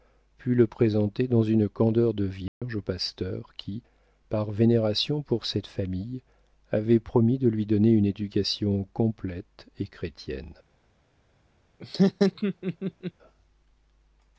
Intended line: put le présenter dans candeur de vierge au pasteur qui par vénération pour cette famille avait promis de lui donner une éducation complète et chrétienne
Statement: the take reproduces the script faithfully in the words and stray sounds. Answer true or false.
false